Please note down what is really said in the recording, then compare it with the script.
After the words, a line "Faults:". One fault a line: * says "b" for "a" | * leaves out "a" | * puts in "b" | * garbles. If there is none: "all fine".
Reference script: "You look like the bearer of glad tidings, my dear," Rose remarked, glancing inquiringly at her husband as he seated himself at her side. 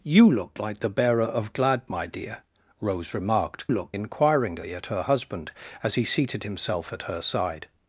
"You look like the bearer of glad my dear," Rose remarked, look inquiringly at her husband as he seated himself at her side.
Faults:
* leaves out "tidings"
* says "look" for "glancing"